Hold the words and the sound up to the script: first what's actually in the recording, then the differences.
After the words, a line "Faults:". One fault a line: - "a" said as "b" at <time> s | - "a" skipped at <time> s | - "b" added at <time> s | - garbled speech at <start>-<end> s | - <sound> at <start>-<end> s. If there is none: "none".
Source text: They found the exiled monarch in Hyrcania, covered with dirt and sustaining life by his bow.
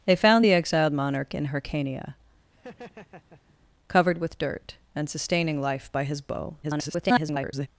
They found the exiled monarch in Hyrcania, covered with dirt and sustaining life by his bow. [garbled]
Faults:
- laugh at 2.5-3.6 s
- garbled speech at 6.6-7.7 s